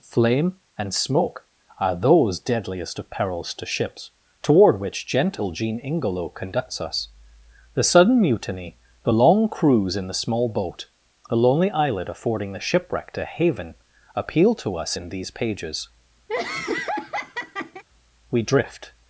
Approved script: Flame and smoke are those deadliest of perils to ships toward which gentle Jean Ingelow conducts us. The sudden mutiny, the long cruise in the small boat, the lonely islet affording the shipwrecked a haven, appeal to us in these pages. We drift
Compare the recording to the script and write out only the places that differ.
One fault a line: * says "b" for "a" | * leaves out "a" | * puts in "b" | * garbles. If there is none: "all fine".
all fine